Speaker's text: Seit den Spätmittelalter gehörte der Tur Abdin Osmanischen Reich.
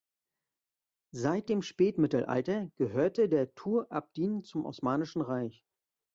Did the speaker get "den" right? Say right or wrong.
wrong